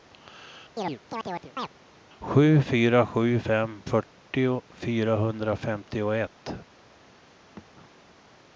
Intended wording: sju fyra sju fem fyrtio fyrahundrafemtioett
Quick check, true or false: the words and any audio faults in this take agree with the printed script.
false